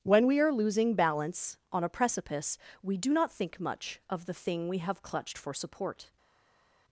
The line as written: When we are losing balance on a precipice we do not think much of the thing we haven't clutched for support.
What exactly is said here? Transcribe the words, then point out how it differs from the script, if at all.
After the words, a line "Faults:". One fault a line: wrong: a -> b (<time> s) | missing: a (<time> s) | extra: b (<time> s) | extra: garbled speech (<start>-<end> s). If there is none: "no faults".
When we are losing balance on a precipice we do not think much of the thing we have clutched for support.
Faults:
wrong: haven't -> have (4.8 s)